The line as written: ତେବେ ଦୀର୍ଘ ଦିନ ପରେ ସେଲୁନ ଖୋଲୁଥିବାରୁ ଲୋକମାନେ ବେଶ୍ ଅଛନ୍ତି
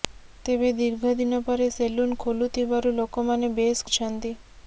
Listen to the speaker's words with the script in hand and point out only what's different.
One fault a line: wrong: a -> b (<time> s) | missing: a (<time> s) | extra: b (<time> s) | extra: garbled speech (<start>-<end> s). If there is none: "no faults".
no faults